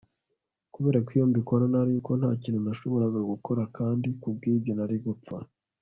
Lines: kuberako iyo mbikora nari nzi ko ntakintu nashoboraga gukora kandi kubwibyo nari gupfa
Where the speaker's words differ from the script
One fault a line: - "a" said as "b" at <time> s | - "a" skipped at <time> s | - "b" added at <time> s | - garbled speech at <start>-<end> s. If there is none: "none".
- "nzi" skipped at 1.9 s